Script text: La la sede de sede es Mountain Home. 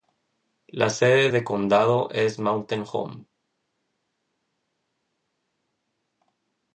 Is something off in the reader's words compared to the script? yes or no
yes